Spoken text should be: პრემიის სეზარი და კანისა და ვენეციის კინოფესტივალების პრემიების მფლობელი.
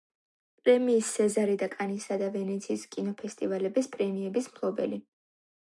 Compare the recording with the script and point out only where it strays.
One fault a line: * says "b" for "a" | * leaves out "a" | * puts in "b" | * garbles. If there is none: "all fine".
all fine